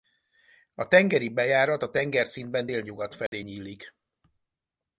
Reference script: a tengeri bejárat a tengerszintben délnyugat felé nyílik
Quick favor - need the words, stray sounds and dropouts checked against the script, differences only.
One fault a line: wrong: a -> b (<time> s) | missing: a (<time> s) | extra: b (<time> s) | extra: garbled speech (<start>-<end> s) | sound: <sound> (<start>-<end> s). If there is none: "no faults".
sound: dropout (3.3-3.3 s)